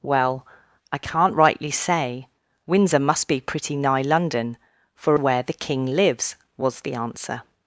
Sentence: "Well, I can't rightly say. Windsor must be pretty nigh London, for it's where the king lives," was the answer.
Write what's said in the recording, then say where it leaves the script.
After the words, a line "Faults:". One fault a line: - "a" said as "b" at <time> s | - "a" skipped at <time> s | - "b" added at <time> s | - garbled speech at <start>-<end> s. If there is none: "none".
"Well, I can't rightly say. Windsor must be pretty nigh London, for where the king lives," was the answer.
Faults:
- "it's" skipped at 5.2 s